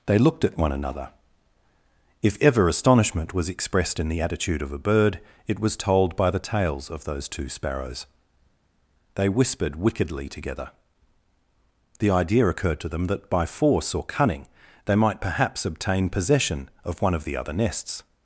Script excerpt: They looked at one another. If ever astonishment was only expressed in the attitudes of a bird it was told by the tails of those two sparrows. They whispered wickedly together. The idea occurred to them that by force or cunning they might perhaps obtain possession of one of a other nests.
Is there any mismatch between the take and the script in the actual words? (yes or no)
yes